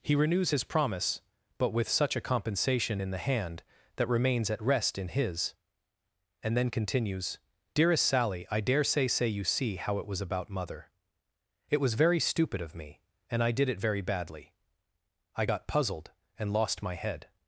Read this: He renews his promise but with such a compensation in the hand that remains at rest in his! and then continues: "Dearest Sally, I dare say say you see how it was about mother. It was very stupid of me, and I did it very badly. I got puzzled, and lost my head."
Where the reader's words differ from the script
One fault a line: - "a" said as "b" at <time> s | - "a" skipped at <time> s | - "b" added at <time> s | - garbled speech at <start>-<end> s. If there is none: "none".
none